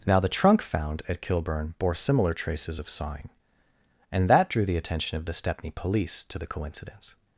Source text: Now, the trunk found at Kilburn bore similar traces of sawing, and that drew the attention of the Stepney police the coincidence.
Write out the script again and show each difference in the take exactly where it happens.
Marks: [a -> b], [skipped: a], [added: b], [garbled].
Now, the trunk found at Kilburn bore similar traces of sawing, and that drew the attention of the Stepney police [added: to] the coincidence.